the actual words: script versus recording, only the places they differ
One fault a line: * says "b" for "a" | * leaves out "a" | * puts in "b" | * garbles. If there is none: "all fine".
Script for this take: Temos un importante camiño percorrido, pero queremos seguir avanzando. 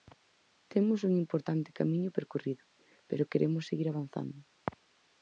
all fine